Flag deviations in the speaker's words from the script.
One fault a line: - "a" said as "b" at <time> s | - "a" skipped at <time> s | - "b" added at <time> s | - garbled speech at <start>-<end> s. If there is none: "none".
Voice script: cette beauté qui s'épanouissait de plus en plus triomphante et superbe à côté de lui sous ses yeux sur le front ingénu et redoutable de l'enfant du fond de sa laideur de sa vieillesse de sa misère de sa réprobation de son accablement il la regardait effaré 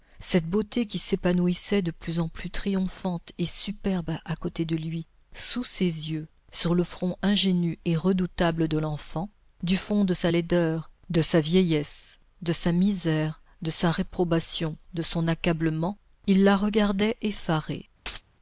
none